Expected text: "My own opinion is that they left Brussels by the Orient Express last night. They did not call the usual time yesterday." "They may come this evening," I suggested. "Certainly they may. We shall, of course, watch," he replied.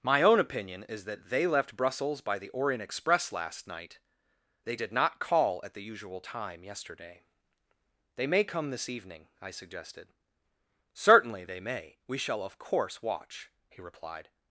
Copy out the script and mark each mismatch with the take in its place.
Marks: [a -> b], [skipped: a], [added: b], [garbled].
"My own opinion is that they left Brussels by the Orient Express last night. They did not call [added: at] the usual time yesterday." "They may come this evening," I suggested. "Certainly they may. We shall, of course, watch," he replied.